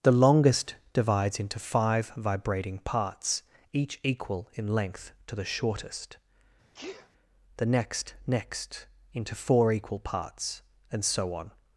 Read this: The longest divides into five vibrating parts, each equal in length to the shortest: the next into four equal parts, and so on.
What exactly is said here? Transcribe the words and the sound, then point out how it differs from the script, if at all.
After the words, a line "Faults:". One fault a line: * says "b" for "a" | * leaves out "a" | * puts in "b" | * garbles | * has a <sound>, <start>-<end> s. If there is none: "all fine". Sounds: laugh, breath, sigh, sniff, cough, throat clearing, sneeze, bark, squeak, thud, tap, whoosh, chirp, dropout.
The longest divides into five vibrating parts, each equal in length to the shortest: the next next into four equal parts, and so on.
Faults:
* has a sneeze, 6.7-7.1 s
* puts in "next"